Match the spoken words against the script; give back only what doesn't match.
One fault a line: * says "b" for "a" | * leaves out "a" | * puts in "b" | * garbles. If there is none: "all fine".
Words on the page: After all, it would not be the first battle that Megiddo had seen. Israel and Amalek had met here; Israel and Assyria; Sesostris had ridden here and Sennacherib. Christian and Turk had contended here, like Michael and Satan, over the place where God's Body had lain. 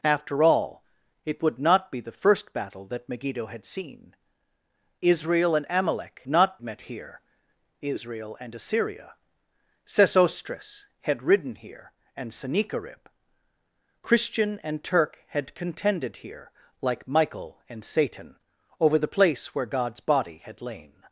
* says "not" for "had"